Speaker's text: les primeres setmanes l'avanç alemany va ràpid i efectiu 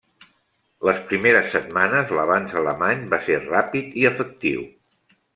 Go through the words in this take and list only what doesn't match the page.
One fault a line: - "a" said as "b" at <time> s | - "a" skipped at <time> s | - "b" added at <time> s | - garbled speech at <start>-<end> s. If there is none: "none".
- "ser" added at 3.3 s